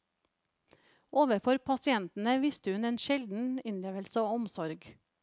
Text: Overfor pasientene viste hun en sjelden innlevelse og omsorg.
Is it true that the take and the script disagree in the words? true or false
false